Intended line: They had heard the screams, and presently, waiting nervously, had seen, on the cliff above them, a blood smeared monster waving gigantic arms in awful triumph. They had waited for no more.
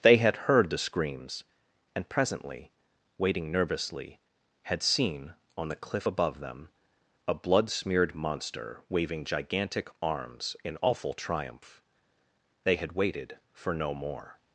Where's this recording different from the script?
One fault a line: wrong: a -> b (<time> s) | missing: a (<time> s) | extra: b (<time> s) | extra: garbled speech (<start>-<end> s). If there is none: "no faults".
no faults